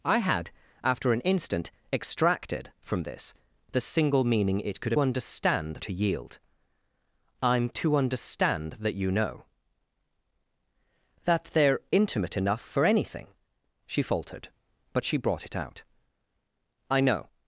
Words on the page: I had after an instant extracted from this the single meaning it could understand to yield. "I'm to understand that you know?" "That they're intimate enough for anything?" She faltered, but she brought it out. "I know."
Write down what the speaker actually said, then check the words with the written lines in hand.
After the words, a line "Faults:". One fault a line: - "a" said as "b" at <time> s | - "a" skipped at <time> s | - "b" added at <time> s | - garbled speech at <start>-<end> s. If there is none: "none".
I had after an instant extracted from this the single meaning it could understand to yield. "I'm to understand that you know?" "That they're intimate enough for anything?" She faltered, but she brought it out. "I know."
Faults:
none